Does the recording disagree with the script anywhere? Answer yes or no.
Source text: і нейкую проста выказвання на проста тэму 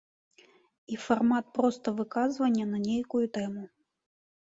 yes